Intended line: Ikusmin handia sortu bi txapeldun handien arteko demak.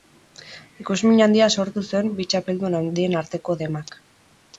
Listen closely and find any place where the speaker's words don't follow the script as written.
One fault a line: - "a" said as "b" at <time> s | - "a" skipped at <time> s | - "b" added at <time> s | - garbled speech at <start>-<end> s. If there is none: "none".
- "zuen" added at 1.9 s